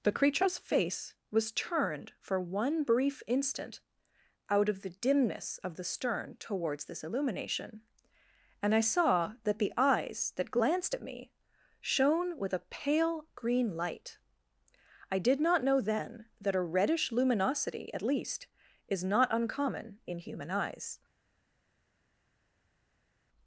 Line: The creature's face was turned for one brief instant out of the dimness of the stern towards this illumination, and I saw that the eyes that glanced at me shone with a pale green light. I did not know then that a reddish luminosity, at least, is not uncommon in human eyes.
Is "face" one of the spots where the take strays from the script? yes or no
no